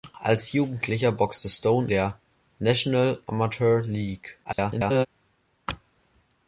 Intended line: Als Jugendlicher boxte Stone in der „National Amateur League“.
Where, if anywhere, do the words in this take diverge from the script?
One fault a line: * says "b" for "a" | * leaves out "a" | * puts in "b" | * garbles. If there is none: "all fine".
* leaves out "in"
* garbles